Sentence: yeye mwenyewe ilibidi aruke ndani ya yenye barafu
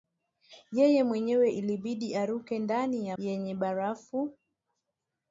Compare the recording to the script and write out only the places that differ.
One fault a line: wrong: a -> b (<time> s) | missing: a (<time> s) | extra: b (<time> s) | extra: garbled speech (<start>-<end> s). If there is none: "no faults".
no faults